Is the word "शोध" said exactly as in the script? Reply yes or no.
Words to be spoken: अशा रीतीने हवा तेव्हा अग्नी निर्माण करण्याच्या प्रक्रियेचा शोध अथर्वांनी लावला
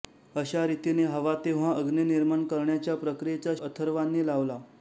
no